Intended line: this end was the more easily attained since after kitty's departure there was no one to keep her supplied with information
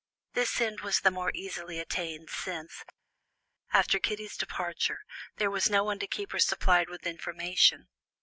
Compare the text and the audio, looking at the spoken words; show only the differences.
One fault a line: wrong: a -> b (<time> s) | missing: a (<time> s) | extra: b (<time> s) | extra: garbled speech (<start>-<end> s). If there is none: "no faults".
no faults